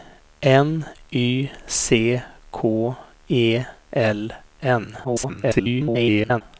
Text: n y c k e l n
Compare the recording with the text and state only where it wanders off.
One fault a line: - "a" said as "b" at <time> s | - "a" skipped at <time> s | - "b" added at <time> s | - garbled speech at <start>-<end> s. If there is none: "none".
- garbled speech at 5.0-6.4 s